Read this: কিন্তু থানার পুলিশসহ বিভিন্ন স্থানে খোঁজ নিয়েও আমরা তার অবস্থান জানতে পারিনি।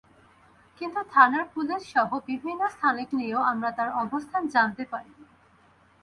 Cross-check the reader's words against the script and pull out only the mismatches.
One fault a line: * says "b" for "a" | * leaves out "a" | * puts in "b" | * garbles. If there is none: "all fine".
* leaves out "খোঁজ"